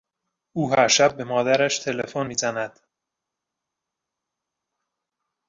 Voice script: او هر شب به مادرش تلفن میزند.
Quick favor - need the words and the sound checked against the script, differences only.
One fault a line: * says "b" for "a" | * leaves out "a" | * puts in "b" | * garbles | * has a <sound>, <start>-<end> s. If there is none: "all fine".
all fine